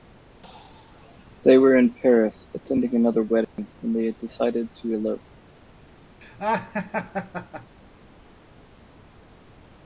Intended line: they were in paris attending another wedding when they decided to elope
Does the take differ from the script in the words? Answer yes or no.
no